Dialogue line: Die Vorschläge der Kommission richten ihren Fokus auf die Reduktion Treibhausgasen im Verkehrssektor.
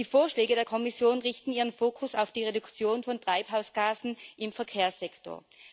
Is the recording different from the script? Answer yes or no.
yes